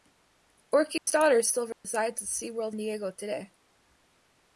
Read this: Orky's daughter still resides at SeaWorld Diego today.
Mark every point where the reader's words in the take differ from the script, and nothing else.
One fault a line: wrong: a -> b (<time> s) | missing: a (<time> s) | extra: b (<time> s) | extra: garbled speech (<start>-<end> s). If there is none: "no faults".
no faults